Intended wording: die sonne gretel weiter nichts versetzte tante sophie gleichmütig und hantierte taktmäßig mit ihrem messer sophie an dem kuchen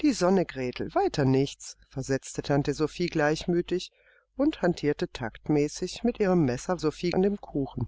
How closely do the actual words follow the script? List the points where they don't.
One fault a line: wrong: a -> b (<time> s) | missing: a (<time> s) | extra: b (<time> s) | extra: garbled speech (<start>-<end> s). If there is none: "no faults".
no faults